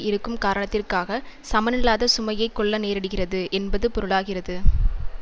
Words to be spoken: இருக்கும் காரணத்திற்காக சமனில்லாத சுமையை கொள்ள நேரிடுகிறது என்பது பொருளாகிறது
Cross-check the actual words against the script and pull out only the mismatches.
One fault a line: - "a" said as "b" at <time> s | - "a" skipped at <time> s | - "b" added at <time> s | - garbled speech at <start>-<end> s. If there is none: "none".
none